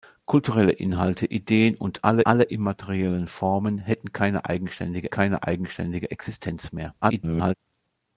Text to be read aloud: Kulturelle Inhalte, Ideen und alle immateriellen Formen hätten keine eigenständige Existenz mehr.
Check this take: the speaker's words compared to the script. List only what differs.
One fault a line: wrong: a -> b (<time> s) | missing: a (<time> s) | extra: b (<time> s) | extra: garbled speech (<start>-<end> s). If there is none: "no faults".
extra: alle (2.2 s)
extra: keine eigenständige (5.1 s)
extra: garbled speech (7.0-7.5 s)